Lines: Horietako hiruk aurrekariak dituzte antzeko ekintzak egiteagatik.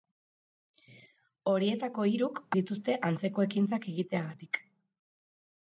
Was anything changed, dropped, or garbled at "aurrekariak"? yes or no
yes